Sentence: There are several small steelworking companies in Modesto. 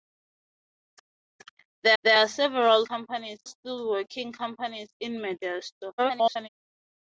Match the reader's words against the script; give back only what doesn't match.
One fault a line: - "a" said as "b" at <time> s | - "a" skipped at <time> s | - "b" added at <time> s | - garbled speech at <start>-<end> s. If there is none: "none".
- "there" added at 2.0 s
- "small" said as "companies" at 2.8 s
- garbled speech at 6.0-6.5 s